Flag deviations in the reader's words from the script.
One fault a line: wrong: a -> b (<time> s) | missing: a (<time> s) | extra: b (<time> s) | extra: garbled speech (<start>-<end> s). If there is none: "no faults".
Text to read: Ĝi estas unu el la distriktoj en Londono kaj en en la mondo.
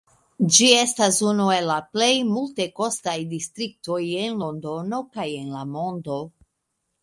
extra: plej multekostaj (2.0 s)
missing: en (5.6 s)